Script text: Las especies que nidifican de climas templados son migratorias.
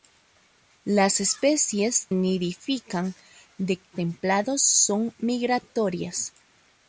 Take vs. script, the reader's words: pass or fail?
fail